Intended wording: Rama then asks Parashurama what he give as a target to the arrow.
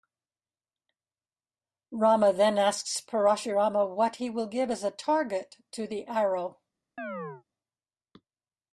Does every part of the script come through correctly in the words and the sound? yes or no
no